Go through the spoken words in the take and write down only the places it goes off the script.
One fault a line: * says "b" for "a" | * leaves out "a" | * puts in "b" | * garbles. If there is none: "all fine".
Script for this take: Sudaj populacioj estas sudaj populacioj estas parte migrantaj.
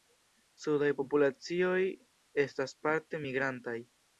* leaves out "sudaj populacioj estas"